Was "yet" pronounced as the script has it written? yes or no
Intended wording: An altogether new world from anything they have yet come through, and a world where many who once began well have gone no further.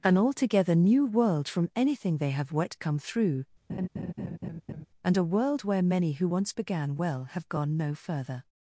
no